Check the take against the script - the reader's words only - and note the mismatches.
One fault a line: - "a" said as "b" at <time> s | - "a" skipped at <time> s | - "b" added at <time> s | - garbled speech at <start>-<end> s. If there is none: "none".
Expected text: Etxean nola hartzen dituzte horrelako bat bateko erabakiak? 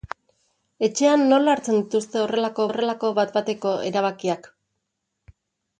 - "horrelako" added at 2.7 s